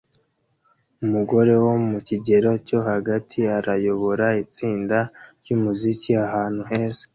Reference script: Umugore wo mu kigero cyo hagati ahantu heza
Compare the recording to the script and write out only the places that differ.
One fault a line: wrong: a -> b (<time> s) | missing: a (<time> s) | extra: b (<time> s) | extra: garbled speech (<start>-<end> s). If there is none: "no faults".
extra: arayobora itsinda ryumuziki (3.6 s)